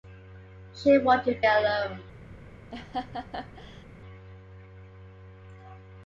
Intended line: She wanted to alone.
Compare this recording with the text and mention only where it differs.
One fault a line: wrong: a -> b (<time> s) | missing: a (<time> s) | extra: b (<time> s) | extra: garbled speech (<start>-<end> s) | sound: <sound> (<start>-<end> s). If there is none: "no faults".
sound: laugh (2.7-3.9 s)